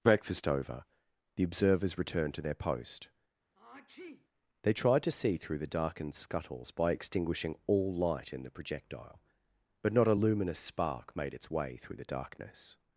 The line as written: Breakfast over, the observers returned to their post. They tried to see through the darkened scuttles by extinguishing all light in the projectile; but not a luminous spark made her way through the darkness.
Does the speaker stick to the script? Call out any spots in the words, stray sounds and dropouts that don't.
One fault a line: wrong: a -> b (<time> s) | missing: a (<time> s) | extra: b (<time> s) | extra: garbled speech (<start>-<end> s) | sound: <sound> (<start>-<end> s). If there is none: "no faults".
sound: sneeze (3.5-4.3 s)
wrong: her -> its (11.3 s)